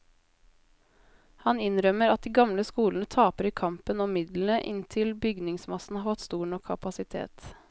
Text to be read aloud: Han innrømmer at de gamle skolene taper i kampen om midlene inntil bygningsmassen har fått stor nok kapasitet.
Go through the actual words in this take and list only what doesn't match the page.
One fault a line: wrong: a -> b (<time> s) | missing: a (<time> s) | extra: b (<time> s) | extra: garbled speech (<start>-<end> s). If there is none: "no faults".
no faults